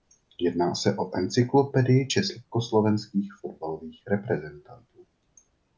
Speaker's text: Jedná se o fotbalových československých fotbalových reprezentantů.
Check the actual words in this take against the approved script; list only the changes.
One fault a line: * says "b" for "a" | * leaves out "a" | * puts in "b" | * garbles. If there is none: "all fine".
* says "encyklopedii" for "fotbalových"